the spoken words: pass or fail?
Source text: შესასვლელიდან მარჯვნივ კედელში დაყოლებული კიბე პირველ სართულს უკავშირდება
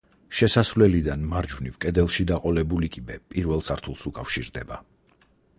pass